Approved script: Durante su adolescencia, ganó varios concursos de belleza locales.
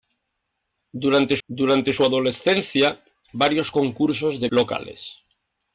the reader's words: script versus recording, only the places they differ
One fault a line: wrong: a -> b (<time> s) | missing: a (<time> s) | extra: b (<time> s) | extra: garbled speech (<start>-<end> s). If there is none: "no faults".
extra: durante (1.5 s)
missing: ganó (3.0 s)
missing: belleza (4.5 s)